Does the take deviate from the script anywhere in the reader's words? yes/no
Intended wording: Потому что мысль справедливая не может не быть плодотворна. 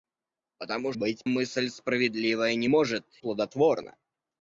yes